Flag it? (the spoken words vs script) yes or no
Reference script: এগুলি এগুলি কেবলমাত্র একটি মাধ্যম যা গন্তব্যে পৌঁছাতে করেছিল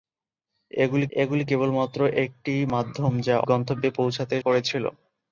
no